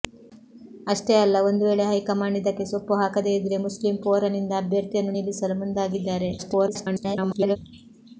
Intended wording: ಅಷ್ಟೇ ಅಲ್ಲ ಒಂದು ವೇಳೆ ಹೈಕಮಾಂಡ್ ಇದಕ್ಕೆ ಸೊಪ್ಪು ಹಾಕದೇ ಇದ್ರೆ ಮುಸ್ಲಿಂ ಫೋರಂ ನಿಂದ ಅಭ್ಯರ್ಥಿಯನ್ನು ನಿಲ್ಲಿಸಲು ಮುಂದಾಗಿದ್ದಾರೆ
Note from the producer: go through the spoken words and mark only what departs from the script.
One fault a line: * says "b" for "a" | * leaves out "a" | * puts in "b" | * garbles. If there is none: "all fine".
* garbles